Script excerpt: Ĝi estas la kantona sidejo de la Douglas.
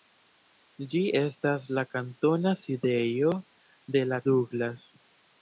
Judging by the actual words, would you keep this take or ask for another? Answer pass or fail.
pass